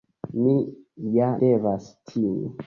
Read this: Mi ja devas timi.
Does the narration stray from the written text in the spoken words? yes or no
no